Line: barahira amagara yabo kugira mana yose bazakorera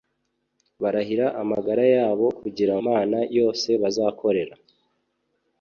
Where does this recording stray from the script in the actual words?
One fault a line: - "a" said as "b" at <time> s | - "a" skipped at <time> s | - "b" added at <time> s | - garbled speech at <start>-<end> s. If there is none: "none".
none